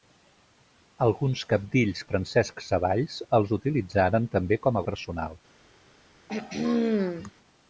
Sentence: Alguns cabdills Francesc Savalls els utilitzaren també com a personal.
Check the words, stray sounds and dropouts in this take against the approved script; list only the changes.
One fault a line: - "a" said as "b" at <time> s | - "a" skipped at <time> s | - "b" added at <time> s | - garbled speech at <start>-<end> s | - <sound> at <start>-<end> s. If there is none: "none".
- throat clearing at 6.3-7.3 s